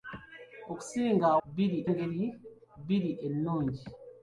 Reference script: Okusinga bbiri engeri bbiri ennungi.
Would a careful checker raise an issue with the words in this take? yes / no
no